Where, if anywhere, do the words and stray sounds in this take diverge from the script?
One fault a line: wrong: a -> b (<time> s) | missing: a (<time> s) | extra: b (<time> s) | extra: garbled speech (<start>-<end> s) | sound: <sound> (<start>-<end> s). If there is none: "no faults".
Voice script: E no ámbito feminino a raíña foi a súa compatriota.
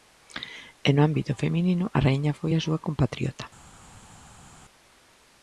no faults